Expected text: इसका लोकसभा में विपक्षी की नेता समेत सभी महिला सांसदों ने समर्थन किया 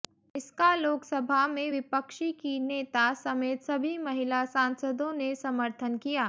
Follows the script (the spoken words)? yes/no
yes